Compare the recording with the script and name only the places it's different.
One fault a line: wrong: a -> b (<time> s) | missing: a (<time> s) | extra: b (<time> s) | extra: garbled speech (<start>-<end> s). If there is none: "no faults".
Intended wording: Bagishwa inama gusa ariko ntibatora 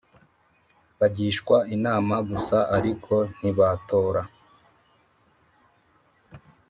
no faults